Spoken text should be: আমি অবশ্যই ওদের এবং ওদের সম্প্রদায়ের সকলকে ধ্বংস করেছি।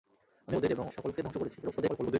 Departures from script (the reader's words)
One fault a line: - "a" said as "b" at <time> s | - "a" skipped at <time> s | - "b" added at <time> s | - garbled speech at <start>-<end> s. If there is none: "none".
- "অবশ্যই" skipped at 0.6 s
- "ওদের সম্প্রদায়ের" skipped at 0.8 s
- garbled speech at 1.6-2.2 s